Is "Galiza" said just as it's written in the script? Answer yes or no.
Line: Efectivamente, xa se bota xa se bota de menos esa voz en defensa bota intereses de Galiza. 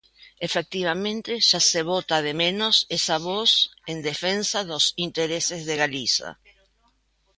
yes